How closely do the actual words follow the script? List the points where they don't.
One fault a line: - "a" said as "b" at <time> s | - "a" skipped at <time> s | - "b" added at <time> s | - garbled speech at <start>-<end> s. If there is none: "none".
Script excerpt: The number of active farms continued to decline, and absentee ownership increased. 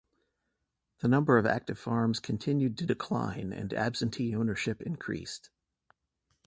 none